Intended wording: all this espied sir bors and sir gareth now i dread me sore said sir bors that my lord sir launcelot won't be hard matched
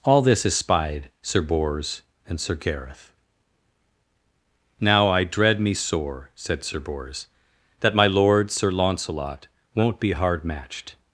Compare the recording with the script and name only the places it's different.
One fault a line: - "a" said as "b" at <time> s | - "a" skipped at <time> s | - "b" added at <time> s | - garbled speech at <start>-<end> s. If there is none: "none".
none